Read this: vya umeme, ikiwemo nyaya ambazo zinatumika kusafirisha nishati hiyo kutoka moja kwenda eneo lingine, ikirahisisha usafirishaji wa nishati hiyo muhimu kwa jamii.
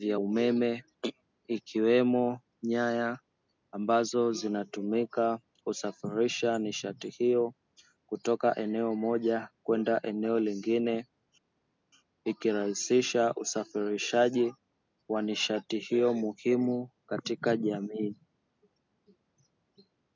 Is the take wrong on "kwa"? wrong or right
wrong